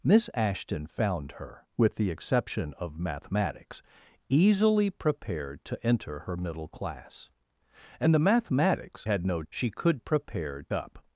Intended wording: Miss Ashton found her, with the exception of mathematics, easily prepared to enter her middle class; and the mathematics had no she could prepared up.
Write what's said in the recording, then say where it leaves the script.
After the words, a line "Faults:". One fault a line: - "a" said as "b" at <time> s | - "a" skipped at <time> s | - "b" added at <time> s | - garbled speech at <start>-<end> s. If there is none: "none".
Miss Ashton found her, with the exception of mathematics, easily prepared to enter her middle class; and the mathematics had no she could prepared up.
Faults:
none